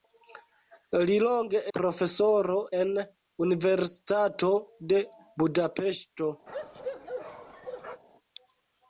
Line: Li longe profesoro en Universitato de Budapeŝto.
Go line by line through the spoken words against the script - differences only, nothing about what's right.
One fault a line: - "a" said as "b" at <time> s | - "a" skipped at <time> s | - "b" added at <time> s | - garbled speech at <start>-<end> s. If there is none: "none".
none